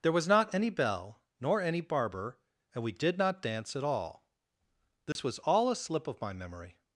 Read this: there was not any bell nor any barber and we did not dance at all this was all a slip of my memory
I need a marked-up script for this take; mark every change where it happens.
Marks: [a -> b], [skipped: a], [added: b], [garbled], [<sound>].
there was not any bell nor any barber and we did not dance at all this [dropout] was all a slip of my memory